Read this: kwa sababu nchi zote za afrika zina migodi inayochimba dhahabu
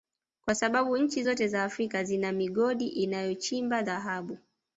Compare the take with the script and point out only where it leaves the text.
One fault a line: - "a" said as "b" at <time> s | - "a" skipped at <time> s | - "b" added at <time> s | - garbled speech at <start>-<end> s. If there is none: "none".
none